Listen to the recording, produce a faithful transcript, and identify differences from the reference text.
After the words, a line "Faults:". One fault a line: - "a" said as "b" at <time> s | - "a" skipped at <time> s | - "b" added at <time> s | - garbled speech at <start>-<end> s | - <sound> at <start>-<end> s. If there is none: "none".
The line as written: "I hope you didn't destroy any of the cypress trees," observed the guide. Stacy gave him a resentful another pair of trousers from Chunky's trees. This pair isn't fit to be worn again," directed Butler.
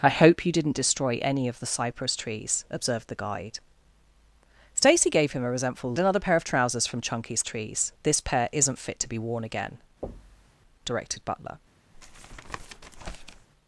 "I hope you didn't destroy any of the cypress trees," observed the guide. Stacy gave him a resentful another pair of trousers from Chunky's trees. This pair isn't fit to be worn again," directed Butler.
Faults:
- thud at 10.0-10.6 s
- tap at 11.9-13.5 s